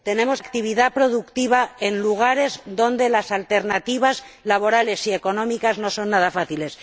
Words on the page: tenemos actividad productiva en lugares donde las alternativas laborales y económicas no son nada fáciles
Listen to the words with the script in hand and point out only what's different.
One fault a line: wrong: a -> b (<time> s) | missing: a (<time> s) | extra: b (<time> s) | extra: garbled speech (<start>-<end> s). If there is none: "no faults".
no faults